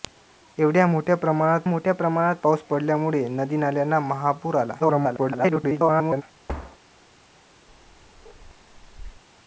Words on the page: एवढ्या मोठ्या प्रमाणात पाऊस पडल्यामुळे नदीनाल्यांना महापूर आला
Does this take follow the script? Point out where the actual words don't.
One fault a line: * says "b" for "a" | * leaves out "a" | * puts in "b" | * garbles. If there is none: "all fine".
* puts in "मोठ्या प्रमाणात"
* garbles